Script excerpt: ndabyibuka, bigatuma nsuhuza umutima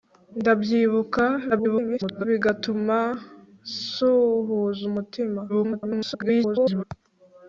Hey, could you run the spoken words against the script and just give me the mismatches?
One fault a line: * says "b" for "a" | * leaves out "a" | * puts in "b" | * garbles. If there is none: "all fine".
* garbles
* garbles